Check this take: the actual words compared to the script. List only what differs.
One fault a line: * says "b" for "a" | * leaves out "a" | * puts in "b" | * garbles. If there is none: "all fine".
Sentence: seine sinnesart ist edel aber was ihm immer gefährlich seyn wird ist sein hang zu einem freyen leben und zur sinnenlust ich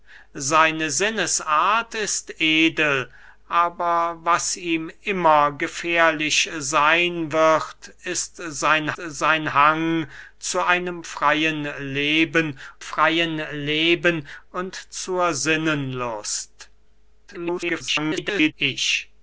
* puts in "sein"
* puts in "freyen leben"
* garbles